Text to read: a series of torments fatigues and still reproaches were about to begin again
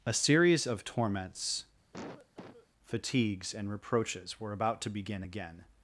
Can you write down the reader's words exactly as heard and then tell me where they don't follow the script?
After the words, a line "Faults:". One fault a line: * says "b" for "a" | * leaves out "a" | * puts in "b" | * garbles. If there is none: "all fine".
a series of torments fatigues and reproaches were about to begin again
Faults:
* leaves out "still"